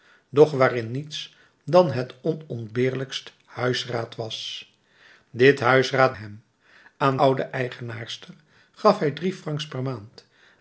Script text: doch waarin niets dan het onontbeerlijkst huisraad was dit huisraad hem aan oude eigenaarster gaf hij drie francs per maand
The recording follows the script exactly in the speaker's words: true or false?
true